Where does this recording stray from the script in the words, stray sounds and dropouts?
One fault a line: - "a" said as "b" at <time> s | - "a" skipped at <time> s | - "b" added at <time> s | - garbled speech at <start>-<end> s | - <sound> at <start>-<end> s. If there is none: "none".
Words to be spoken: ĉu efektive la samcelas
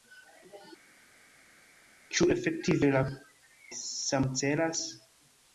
none